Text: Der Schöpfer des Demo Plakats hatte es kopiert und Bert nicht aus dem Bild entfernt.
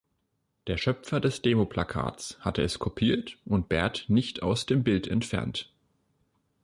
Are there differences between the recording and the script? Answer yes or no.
no